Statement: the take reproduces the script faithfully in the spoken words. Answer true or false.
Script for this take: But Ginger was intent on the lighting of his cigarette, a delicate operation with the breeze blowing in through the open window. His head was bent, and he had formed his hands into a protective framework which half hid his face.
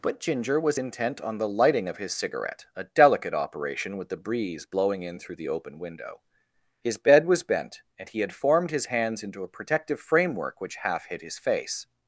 false